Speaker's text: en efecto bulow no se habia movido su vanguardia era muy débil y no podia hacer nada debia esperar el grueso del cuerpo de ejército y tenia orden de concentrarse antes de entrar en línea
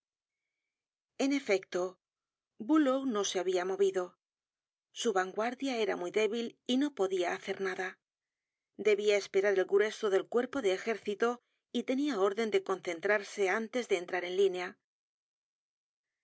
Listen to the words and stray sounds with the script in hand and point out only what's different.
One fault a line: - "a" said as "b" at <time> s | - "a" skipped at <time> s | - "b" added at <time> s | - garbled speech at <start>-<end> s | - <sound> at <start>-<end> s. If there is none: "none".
none